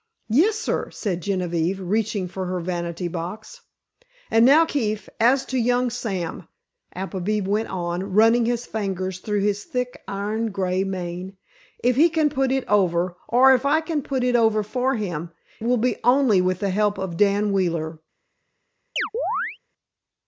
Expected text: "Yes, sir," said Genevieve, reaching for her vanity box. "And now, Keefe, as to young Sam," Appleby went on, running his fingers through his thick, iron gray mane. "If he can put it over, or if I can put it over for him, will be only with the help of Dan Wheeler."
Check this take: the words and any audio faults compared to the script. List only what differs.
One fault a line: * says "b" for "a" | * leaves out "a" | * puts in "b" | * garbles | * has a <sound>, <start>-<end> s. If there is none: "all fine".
* has a chirp, 19.0-19.6 s